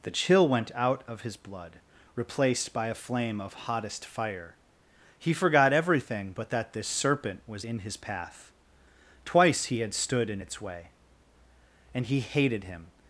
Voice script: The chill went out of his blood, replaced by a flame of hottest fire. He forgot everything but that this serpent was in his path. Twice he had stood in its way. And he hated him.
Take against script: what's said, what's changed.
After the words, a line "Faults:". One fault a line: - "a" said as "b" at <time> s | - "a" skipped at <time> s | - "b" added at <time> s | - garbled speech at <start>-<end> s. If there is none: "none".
The chill went out of his blood, replaced by a flame of hottest fire. He forgot everything but that this serpent was in his path. Twice he had stood in its way. And he hated him.
Faults:
none